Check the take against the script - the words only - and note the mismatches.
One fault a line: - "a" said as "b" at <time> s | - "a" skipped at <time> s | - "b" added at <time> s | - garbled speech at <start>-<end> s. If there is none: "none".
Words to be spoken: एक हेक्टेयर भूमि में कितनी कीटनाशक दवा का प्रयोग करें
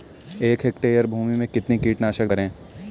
- "दवा का प्रयोग" skipped at 2.3 s